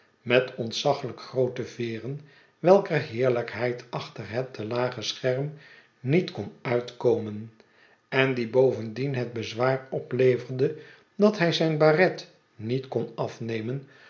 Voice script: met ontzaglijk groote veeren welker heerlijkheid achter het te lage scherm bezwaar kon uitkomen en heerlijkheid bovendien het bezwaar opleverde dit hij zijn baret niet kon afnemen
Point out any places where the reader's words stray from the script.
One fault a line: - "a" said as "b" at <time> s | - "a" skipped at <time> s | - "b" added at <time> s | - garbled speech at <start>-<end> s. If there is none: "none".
- "bezwaar" said as "niet" at 6.0 s
- "heerlijkheid" said as "die" at 8.3 s
- "dit" said as "dat" at 11.2 s